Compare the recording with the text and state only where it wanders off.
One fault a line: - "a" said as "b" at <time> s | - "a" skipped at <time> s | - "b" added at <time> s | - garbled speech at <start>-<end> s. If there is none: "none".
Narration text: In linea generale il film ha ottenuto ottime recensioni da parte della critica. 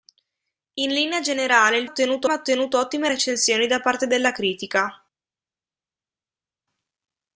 - "film" said as "ottenuto" at 1.8 s